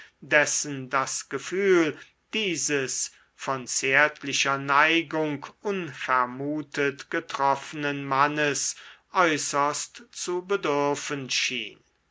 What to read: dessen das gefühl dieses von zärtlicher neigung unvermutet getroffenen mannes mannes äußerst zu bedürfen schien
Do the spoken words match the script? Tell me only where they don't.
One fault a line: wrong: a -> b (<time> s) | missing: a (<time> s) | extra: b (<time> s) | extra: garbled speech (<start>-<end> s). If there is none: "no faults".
missing: mannes (8.8 s)